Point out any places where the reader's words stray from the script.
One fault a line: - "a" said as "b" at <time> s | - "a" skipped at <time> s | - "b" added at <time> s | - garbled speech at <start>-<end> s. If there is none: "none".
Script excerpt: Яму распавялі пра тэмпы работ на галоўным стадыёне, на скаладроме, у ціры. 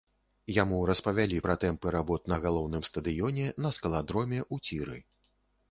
none